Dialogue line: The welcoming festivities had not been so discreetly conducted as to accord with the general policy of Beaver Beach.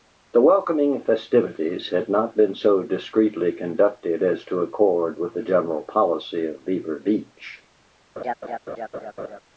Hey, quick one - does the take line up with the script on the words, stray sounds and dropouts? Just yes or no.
no